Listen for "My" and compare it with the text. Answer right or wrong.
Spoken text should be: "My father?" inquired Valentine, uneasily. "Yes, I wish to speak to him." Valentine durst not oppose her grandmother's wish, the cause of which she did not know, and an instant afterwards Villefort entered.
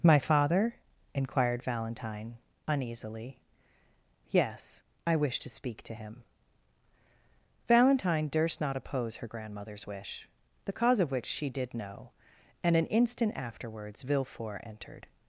right